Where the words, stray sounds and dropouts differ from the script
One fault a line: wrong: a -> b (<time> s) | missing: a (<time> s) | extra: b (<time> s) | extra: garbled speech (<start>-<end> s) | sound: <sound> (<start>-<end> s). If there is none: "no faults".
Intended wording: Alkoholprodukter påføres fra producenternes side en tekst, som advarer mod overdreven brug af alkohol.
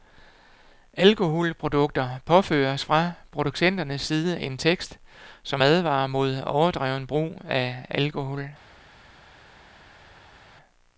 no faults